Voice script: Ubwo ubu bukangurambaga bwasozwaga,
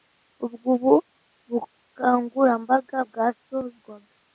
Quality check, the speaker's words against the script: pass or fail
pass